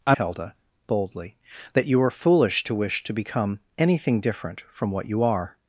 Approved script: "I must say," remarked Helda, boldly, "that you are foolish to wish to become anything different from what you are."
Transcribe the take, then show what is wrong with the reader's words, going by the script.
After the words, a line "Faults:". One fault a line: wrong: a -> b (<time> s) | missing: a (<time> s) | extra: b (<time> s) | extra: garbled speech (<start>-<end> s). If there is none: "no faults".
"I Helda, boldly, "that you are foolish to wish to become anything different from what you are."
Faults:
missing: must say remarked (0.1 s)